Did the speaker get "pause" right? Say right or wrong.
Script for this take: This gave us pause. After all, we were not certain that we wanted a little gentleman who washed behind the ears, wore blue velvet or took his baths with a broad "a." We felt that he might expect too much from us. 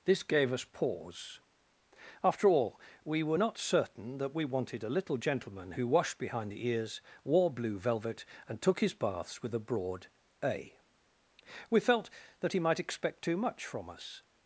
right